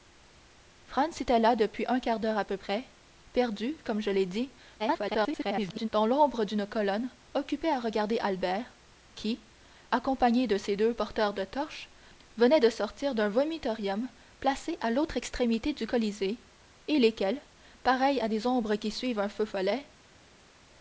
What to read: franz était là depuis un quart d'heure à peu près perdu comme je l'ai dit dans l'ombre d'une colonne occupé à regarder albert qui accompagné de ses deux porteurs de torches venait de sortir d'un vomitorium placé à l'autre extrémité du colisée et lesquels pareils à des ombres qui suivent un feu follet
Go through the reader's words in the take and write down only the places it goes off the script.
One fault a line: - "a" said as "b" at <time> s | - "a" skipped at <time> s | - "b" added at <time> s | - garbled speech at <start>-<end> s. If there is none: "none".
- garbled speech at 4.8-5.9 s